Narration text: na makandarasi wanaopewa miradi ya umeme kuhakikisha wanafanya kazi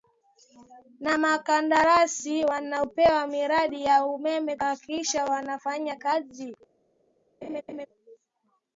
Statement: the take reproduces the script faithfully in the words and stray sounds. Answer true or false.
false